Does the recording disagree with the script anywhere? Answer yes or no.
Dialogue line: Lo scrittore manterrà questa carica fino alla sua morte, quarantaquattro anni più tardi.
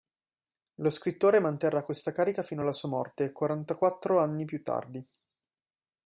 no